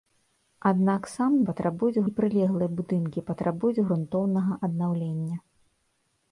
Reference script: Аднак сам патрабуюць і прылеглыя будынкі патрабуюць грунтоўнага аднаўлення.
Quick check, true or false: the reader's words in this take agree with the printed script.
true